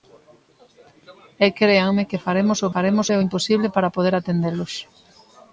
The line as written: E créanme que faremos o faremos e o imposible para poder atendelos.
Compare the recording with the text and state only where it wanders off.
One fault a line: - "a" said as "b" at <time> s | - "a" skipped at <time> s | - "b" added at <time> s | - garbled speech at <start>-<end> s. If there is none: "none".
none